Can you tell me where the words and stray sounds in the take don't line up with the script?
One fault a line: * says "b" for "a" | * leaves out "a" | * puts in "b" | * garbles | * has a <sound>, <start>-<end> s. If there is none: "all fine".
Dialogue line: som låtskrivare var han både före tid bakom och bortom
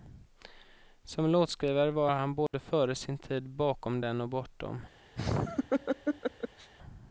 * has a dropout, 2.5-2.5 s
* puts in "sin"
* puts in "den"
* has a laugh, 5.2-6.7 s